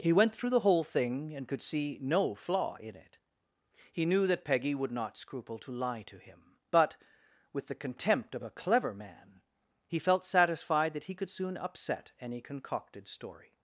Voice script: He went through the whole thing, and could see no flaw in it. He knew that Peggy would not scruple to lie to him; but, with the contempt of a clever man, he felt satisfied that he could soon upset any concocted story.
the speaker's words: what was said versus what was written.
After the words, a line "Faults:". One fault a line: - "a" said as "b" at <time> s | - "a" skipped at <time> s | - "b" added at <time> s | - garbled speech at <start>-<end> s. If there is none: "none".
He went through the whole thing, and could see no flaw in it. He knew that Peggy would not scruple to lie to him; but, with the contempt of a clever man, he felt satisfied that he could soon upset any concocted story.
Faults:
none